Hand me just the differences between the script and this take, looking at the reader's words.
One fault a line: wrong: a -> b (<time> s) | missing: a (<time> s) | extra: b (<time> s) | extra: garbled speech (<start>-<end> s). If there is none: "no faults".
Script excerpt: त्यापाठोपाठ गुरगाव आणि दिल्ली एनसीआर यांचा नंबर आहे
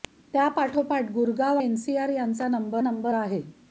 missing: आणि दिल्ली (1.6 s)
extra: नंबर (2.8 s)